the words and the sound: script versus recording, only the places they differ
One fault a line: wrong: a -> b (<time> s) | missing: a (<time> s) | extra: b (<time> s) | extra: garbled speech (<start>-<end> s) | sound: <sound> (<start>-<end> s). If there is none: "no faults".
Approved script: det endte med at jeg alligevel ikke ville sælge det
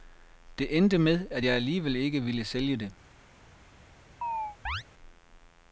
sound: chirp (4.2-4.8 s)